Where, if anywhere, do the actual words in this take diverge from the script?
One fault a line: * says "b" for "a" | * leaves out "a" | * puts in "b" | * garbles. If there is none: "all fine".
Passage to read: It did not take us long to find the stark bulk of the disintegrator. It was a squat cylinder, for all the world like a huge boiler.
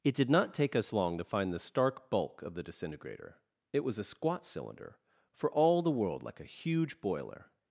all fine